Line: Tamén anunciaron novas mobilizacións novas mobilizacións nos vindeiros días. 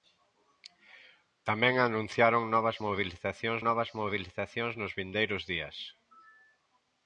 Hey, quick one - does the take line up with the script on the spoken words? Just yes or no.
yes